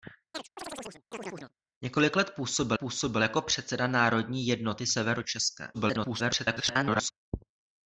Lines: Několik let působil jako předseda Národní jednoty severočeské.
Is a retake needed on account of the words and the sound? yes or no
yes